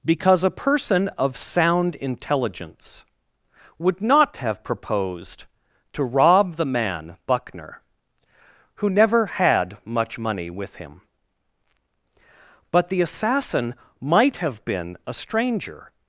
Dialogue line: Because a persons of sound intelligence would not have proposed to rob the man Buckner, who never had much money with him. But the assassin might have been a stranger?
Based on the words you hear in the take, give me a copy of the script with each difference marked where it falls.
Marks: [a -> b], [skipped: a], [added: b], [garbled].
Because a [persons -> person] of sound intelligence would not have proposed to rob the man Buckner, who never had much money with him. But the assassin might have been a stranger?